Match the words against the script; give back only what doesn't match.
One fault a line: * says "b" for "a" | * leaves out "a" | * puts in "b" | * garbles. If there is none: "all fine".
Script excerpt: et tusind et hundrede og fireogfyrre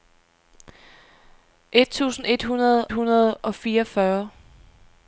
* puts in "hundrede"